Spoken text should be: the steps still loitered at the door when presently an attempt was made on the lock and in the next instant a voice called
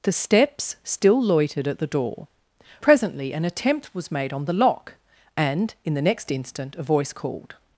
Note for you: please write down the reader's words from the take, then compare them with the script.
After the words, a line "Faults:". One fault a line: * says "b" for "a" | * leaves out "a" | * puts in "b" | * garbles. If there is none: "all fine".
the steps still loitered at the door presently an attempt was made on the lock and in the next instant a voice called
Faults:
* leaves out "when"